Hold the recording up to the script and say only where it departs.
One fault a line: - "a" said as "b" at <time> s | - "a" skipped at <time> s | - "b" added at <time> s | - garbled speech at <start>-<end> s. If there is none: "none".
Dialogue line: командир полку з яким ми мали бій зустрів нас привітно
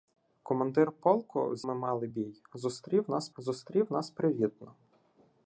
- "яким" skipped at 1.6 s
- "зустрів нас" added at 3.4 s